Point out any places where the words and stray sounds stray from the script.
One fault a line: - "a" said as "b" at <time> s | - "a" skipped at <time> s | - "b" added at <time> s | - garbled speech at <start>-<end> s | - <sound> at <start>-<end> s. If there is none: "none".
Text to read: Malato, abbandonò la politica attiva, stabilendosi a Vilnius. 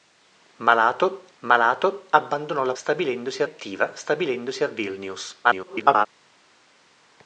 - "malato" added at 1.4 s
- "politica" said as "stabilendosi" at 2.7 s
- garbled speech at 5.4-6.1 s